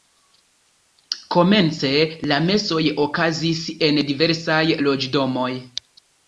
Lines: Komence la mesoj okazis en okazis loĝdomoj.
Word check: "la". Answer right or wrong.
right